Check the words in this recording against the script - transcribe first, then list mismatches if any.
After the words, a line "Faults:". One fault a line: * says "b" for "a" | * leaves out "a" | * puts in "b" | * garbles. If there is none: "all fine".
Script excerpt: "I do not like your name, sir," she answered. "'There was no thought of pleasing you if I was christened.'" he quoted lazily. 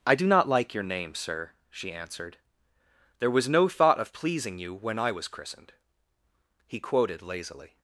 "I do not like your name, sir," she answered. "'There was no thought of pleasing you when I was christened.'" he quoted lazily.
Faults:
* says "when" for "if"